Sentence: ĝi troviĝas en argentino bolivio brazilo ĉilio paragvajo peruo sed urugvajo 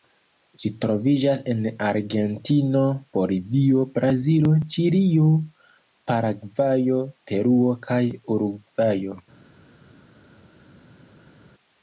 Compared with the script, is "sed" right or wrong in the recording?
wrong